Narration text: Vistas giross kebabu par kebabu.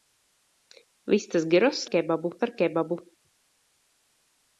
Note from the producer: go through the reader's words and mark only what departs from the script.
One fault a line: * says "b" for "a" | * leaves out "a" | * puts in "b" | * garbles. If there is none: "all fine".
all fine